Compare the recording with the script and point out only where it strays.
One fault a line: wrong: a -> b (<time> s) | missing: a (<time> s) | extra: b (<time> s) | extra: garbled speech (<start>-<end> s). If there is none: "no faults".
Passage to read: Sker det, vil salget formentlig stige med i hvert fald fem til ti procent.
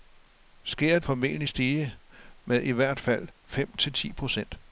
missing: det vil salget (1.0 s)